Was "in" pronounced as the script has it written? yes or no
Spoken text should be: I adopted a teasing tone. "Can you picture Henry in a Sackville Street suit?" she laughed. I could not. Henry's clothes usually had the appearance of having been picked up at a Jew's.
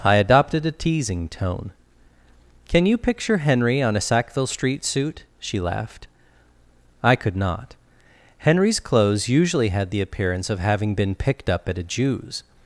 no